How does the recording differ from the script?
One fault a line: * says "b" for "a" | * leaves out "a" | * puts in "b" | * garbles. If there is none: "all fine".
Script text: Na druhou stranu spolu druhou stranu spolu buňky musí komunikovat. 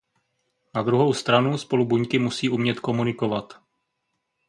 * leaves out "druhou stranu spolu"
* puts in "umět"